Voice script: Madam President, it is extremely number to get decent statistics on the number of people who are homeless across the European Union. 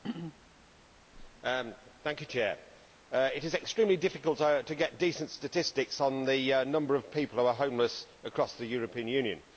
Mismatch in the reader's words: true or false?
true